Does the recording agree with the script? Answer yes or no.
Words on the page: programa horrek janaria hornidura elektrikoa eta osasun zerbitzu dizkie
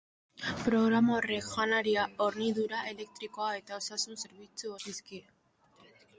yes